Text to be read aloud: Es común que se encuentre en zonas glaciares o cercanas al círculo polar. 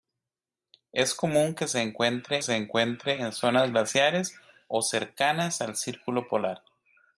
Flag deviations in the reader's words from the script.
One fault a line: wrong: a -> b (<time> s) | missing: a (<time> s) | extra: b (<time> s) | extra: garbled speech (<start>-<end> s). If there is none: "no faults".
extra: se encuentre (2.4 s)